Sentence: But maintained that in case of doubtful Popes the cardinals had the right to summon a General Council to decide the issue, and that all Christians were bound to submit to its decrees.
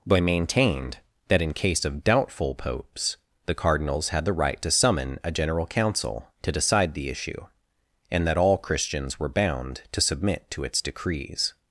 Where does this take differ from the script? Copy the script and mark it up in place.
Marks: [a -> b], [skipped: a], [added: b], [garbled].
But maintained that in case of doubtful Popes the cardinals had the right to summon a General Council to decide the issue, and that all Christians were bound to submit to its decrees.